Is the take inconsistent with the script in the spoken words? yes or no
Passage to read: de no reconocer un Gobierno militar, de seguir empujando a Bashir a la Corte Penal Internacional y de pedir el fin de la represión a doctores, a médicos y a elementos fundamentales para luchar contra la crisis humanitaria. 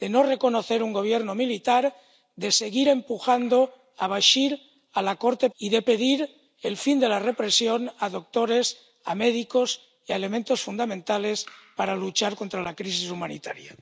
yes